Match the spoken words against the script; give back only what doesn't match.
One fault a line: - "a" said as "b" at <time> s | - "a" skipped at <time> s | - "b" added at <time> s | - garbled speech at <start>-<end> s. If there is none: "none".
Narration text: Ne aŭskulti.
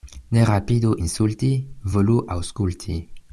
- "rapidu insulti volu" added at 0.5 s